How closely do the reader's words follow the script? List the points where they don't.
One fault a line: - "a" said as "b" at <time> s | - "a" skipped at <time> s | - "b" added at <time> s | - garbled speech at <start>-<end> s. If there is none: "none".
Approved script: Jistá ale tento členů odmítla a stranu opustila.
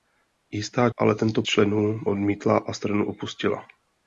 none